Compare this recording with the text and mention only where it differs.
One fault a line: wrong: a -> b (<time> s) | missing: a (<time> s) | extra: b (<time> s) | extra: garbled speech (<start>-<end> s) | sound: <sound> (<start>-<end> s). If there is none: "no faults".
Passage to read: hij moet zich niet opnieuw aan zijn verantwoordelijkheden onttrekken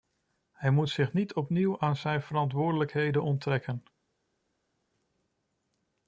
no faults